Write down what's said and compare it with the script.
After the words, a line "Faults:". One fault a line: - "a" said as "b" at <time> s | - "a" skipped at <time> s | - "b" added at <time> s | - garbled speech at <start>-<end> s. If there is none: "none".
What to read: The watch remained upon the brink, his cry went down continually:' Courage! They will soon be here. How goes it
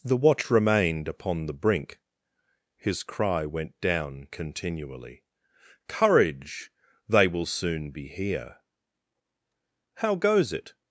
The watch remained upon the brink, his cry went down continually:' Courage! They will soon be here. How goes it
Faults:
none